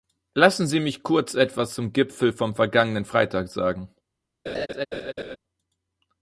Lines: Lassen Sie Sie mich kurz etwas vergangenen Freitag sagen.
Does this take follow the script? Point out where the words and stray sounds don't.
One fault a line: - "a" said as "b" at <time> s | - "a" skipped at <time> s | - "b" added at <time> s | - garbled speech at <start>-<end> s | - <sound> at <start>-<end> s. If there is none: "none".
- "Sie" skipped at 0.8 s
- "zum Gipfel vom" added at 1.8 s
- laugh at 4.5-5.4 s